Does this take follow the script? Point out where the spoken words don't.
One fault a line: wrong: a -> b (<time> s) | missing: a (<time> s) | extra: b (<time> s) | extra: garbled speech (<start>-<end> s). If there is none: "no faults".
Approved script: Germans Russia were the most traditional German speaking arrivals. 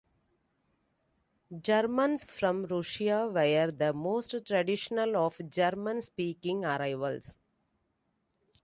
extra: from (2.2 s)
extra: of (5.2 s)